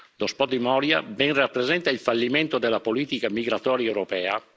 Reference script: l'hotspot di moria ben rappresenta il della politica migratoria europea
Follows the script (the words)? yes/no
no